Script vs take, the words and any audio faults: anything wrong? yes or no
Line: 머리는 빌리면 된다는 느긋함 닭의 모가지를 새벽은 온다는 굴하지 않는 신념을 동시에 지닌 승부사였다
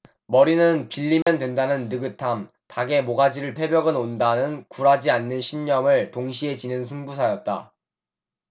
yes